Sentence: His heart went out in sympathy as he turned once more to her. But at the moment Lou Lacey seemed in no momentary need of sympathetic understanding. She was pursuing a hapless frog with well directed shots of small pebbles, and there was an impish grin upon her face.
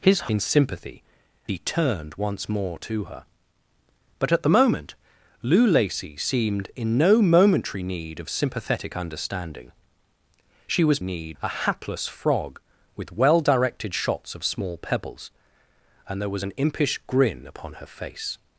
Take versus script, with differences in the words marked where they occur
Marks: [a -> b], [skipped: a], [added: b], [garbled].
His [skipped: heart went out] in sympathy [skipped: as] he turned once more to her. But at the moment Lou Lacey seemed in no momentary need of sympathetic understanding. She was [pursuing -> need] a hapless frog with well directed shots of small pebbles, and there was an impish grin upon her face.